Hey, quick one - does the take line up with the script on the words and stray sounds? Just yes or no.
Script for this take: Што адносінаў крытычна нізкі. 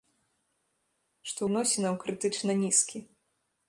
yes